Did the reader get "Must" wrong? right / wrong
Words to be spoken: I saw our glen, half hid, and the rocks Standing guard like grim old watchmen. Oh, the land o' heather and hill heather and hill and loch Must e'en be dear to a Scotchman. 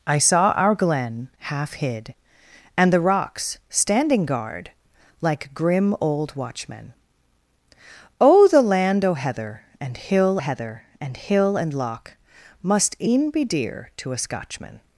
right